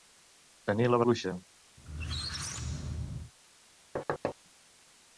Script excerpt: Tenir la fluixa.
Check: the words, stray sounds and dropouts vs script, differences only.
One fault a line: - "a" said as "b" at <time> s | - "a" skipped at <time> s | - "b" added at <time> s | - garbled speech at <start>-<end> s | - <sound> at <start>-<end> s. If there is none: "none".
- squeak at 1.8-3.3 s
- thud at 4.0-4.4 s